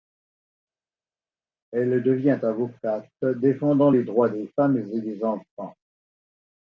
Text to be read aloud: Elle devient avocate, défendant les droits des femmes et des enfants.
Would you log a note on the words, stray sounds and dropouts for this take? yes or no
no